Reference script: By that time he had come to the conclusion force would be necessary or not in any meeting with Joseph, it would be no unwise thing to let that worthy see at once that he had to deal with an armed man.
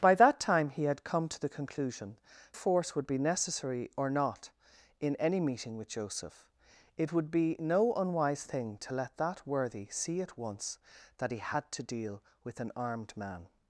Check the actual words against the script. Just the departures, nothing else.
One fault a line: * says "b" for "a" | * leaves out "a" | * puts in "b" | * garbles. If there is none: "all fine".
all fine